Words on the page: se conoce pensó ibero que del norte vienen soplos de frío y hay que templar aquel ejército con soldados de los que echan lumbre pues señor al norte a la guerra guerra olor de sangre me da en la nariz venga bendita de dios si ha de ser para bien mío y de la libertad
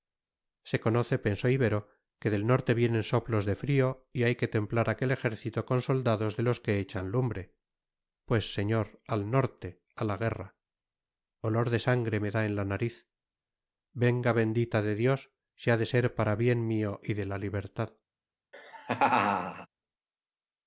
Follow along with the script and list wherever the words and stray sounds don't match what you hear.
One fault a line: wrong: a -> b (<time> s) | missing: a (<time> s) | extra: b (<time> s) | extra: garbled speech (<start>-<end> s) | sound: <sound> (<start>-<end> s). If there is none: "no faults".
missing: guerra (10.6 s)
sound: laugh (18.5-19.7 s)